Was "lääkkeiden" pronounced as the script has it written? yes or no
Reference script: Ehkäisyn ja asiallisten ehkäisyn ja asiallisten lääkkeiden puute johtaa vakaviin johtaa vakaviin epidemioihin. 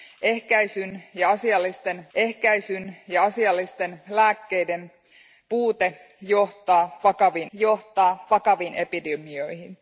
yes